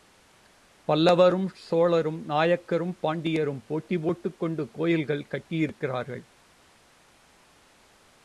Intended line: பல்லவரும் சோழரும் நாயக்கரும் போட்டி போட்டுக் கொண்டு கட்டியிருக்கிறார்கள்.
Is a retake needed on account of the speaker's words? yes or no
yes